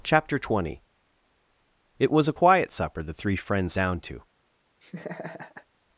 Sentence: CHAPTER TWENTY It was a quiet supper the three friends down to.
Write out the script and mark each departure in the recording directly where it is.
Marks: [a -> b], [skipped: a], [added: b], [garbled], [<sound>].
CHAPTER TWENTY It was a quiet supper the three friends down to. [laugh]